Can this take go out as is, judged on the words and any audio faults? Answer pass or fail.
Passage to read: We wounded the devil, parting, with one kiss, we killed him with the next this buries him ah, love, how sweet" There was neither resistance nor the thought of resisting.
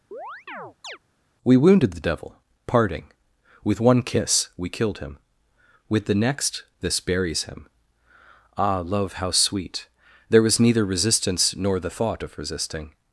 fail